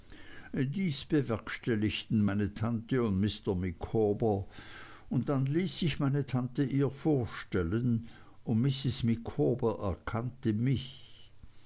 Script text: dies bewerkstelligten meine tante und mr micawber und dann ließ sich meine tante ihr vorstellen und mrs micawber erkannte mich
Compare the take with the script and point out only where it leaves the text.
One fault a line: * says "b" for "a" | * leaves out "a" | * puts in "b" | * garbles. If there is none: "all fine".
all fine